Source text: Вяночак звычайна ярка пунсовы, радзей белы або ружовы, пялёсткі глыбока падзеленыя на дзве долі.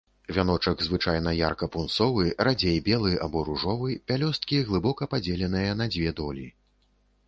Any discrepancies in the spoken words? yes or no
no